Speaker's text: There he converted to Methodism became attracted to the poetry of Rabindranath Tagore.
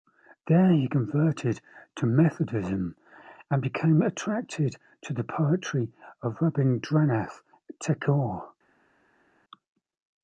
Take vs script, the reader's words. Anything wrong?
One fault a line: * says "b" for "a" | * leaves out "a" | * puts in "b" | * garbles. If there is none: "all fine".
* puts in "and"